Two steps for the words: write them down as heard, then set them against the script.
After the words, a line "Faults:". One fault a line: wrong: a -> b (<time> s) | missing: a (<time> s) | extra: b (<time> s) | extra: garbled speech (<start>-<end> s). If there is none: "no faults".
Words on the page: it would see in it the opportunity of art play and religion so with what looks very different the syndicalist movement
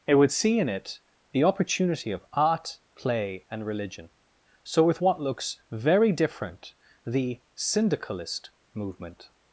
it would see in it the opportunity of art play and religion so with what looks very different the syndicalist movement
Faults:
no faults